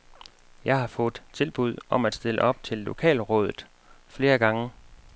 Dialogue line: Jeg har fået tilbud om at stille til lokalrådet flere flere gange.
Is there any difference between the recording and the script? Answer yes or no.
yes